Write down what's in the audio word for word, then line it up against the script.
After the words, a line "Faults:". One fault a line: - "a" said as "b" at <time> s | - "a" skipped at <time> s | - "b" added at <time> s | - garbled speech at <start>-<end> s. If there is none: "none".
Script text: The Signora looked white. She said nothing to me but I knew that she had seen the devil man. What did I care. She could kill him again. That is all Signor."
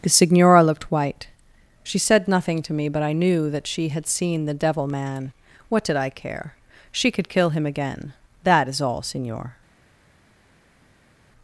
The Signora looked white. She said nothing to me but I knew that she had seen the devil man. What did I care. She could kill him again. That is all Signor."
Faults:
none